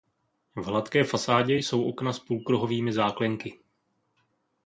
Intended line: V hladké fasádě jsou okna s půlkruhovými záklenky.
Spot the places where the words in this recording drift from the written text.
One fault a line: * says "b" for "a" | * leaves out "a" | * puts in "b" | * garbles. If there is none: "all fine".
all fine